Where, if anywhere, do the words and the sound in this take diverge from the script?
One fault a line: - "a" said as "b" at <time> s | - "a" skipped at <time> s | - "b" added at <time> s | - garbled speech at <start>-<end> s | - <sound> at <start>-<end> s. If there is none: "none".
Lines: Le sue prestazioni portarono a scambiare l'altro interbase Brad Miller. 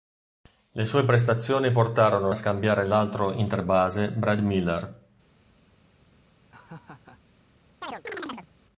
- laugh at 6.5-7.2 s
- chirp at 7.8-8.5 s